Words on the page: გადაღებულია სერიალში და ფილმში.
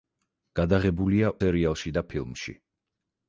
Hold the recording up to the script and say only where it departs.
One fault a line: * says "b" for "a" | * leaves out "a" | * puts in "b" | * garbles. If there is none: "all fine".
all fine